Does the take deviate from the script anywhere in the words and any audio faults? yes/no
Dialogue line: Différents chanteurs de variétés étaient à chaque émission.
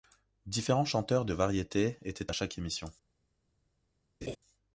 yes